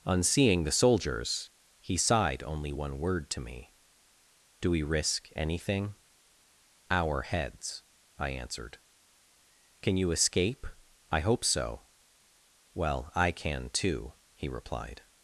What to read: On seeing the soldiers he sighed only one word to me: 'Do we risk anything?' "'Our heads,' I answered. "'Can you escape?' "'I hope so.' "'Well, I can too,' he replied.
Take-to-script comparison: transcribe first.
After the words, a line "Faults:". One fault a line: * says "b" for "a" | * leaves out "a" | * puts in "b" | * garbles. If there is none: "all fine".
On seeing the soldiers he sighed only one word to me: 'Do we risk anything?' "'Our heads,' I answered. "'Can you escape?' "'I hope so.' "'Well, I can too,' he replied.
Faults:
all fine